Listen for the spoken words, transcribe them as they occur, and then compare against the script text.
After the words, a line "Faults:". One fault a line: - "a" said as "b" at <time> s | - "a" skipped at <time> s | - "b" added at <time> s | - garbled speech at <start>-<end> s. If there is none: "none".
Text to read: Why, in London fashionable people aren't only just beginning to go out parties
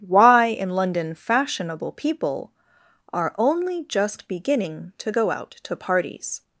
Why, in London fashionable people are only just beginning to go out to parties
Faults:
- "aren't" said as "are" at 3.1 s
- "to" added at 5.6 s